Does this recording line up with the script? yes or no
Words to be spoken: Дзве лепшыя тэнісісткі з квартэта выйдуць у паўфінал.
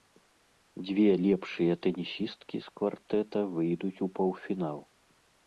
yes